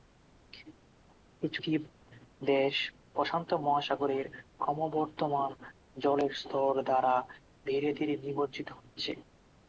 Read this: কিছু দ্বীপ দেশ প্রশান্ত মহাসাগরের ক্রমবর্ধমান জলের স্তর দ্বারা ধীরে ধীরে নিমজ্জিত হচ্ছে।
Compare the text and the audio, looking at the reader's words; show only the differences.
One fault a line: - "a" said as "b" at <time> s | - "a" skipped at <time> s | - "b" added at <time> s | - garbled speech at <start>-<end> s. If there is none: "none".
none